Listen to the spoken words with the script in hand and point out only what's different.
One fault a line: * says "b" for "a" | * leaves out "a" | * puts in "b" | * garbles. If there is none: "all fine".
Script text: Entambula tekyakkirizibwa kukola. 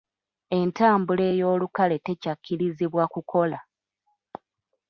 * puts in "ey'olukale"